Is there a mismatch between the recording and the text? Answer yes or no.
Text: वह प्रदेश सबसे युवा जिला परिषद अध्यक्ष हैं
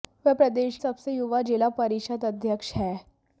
no